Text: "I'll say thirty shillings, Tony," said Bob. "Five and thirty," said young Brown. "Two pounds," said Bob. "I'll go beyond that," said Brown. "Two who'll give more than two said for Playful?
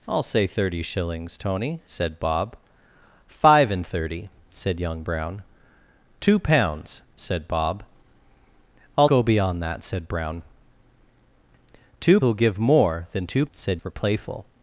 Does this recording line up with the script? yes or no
yes